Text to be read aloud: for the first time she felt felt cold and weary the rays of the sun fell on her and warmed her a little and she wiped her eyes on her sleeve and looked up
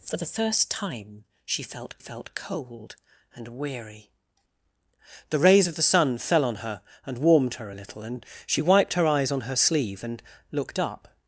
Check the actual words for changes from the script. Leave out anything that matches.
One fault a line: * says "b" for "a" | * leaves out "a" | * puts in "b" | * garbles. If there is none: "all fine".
all fine